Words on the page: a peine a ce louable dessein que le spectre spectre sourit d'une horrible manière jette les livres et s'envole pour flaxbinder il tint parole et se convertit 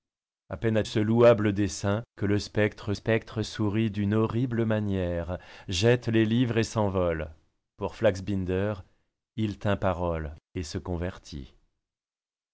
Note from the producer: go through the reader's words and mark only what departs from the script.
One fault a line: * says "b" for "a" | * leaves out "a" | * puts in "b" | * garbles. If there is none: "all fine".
all fine